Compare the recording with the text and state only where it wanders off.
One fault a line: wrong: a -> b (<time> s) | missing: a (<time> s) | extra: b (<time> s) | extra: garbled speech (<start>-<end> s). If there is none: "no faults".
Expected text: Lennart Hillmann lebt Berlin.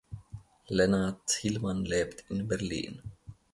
extra: in (2.3 s)